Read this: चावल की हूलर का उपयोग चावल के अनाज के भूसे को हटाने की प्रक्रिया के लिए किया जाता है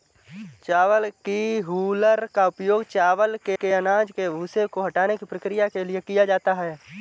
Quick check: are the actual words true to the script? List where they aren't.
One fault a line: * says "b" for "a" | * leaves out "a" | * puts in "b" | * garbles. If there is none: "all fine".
* puts in "के"